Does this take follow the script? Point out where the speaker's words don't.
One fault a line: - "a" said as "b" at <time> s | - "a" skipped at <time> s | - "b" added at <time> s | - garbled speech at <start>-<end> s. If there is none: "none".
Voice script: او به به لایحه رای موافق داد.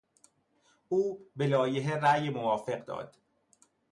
- "به" skipped at 1.5 s